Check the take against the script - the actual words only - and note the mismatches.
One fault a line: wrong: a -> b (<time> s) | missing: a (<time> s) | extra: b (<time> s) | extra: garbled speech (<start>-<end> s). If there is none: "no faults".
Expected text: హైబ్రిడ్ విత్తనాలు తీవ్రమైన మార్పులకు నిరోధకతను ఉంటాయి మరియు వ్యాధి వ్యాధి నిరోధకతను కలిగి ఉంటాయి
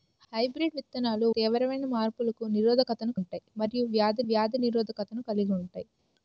no faults